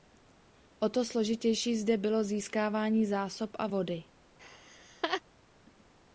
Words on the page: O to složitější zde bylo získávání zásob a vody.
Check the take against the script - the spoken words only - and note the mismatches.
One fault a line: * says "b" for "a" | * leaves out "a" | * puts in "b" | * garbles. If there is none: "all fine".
all fine